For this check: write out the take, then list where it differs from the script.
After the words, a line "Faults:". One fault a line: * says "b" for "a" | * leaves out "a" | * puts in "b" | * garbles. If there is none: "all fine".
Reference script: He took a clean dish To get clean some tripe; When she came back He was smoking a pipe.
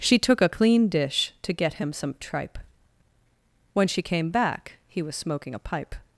She took a clean dish To get him some tripe; When she came back He was smoking a pipe.
Faults:
* says "She" for "He"
* says "him" for "clean"